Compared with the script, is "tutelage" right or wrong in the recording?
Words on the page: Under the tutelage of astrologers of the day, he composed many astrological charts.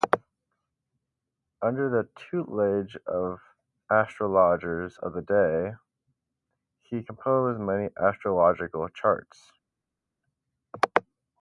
right